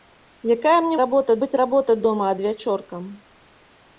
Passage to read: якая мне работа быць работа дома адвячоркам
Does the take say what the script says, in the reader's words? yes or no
yes